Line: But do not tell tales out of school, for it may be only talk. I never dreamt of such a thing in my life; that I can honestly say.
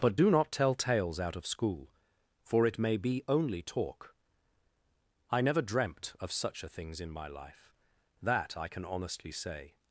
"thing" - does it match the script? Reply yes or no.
no